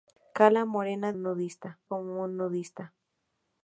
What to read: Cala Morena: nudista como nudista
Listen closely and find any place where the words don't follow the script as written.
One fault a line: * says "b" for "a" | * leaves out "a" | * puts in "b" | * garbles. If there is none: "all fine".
all fine